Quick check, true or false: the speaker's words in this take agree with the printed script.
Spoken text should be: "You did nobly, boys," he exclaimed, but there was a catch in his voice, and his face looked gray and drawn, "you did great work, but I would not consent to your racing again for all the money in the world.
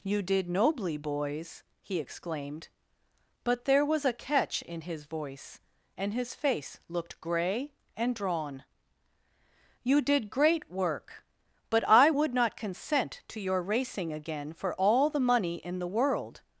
true